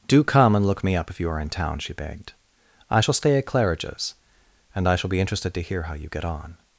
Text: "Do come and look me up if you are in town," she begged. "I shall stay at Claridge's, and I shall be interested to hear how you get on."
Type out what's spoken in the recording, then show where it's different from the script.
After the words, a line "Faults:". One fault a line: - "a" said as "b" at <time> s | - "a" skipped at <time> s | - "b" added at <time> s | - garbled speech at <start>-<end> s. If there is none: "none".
"Do come and look me up if you are in town," she begged. "I shall stay at Claridge's, and I shall be interested to hear how you get on."
Faults:
none